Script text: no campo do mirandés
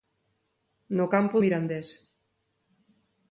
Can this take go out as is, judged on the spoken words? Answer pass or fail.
fail